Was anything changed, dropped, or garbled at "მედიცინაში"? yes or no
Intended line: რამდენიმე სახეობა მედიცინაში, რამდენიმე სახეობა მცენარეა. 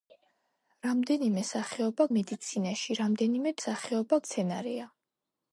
no